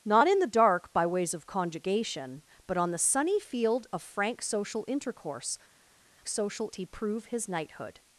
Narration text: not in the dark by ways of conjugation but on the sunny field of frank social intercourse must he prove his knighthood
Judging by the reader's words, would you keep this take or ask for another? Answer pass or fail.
fail